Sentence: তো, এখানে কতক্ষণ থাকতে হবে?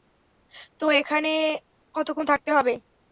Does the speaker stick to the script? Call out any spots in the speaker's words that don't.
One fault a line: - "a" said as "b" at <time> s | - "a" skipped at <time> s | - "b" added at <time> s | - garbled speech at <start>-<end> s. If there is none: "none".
none